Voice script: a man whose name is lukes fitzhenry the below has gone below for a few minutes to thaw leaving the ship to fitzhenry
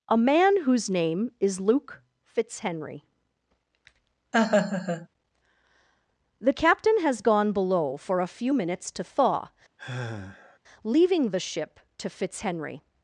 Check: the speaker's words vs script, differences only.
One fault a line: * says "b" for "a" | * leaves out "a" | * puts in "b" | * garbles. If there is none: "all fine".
* says "luke" for "lukes"
* says "captain" for "below"